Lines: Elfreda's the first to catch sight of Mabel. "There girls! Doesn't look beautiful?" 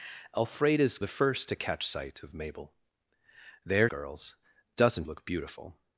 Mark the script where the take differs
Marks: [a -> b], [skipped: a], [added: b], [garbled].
Elfreda's the first to catch sight of Mabel. "There girls! Doesn't look beautiful?"